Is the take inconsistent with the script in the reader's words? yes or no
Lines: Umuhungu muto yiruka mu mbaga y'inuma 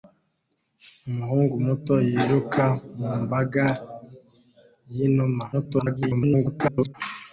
yes